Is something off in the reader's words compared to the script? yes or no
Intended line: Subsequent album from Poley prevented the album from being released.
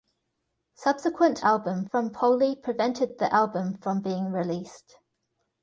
no